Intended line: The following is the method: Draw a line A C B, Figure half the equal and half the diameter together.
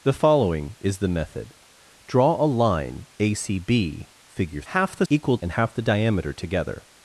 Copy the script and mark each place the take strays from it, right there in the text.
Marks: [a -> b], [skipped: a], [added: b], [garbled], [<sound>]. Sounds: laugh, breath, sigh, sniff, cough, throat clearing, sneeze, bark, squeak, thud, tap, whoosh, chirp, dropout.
The following is the method: Draw a line A C B, Figure half the equal and half the diameter together.